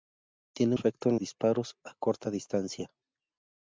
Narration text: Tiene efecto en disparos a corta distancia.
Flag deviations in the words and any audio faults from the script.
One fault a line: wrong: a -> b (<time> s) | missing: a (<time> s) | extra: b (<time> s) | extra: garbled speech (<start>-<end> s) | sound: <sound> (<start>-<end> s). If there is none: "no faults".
no faults